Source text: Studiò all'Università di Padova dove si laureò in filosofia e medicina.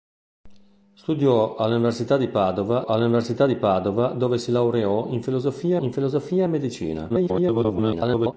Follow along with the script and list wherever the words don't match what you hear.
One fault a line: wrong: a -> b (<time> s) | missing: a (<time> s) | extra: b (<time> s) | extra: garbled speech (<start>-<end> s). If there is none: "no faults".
extra: all'Università di Padova (2.8 s)
extra: in filosofia (5.8 s)
extra: garbled speech (7.1-8.3 s)